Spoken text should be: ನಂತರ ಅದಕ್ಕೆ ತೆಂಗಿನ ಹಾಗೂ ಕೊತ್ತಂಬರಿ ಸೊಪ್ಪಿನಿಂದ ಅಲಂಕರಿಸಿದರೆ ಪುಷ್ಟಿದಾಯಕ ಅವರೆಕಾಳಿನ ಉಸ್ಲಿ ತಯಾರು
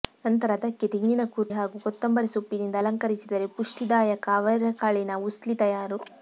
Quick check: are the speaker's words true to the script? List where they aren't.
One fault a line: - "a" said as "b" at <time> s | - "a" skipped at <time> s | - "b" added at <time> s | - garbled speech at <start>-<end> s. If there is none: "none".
none